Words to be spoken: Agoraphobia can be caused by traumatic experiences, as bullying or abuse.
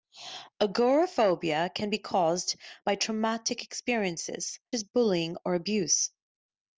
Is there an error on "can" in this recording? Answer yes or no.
no